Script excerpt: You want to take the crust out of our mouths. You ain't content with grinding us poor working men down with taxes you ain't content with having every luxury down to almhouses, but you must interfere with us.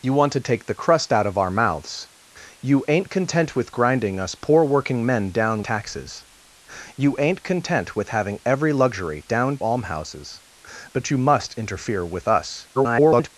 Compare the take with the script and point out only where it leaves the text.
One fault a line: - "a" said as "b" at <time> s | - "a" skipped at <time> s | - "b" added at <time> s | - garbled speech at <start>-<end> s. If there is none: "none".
- "with" skipped at 5.6 s
- "to" skipped at 9.6 s
- garbled speech at 12.7-13.3 s